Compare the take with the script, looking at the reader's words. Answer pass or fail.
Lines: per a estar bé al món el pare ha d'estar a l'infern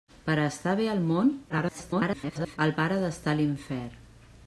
fail